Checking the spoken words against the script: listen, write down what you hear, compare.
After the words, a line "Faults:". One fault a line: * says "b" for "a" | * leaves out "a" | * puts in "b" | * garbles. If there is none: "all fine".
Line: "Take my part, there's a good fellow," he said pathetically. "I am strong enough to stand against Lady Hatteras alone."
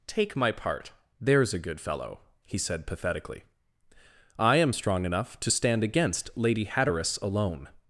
"Take my part, there's a good fellow," he said pathetically. "I am strong enough to stand against Lady Hatteras alone."
Faults:
all fine